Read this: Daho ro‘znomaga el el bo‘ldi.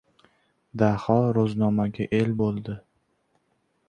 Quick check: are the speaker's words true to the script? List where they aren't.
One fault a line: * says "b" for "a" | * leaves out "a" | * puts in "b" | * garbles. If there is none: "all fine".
* leaves out "el"